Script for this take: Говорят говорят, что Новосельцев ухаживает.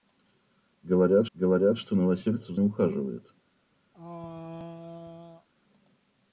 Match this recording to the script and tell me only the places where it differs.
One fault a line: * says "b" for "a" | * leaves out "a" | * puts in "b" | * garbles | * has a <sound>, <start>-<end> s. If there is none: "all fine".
* has a throat clearing, 3.9-5.5 s